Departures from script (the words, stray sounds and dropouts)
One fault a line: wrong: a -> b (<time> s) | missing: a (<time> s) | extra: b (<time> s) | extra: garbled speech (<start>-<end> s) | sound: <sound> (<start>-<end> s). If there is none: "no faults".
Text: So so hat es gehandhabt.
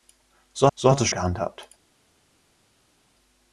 no faults